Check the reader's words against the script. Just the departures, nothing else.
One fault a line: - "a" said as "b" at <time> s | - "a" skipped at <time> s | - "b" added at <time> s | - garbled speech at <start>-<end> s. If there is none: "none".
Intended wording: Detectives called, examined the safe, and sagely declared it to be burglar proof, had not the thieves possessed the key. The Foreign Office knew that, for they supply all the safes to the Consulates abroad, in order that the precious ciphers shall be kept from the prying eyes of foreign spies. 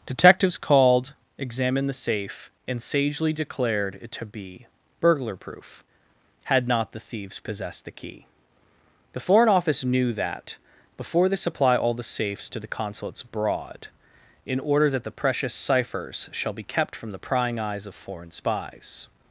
- "for" said as "before" at 11.0 s